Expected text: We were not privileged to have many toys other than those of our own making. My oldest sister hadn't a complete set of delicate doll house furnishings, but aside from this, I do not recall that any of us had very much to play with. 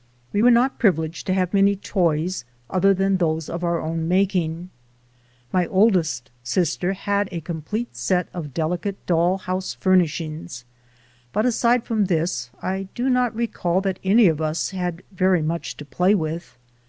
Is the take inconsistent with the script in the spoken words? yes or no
yes